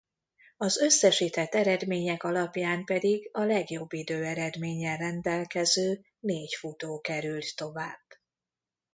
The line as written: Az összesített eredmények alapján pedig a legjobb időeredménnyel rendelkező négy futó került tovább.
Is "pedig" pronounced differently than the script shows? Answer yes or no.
no